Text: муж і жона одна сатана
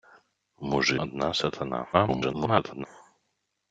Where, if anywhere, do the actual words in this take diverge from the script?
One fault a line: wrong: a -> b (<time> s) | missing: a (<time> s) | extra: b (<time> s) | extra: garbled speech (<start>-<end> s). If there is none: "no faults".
missing: жона (1.0 s)
extra: garbled speech (1.9-2.9 s)